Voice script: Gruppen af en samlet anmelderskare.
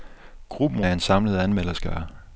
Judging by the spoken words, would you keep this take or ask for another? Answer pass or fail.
pass